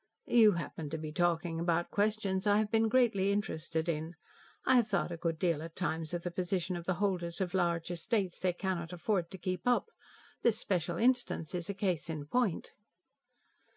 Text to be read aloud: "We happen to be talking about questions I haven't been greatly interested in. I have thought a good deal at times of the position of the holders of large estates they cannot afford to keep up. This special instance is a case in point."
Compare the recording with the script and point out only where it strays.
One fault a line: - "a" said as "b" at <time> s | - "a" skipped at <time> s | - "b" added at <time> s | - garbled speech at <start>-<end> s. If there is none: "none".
- "We" said as "You" at 0.2 s
- "haven't" said as "have" at 2.6 s